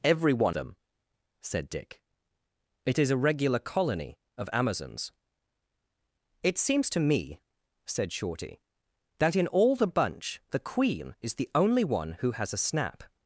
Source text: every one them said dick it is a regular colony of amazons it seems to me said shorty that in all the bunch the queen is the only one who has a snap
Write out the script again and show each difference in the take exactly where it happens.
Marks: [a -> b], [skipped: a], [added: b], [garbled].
every one them said dick it is a regular colony of amazons it seems to me said shorty that in all the bunch the queen is the only one who has a snap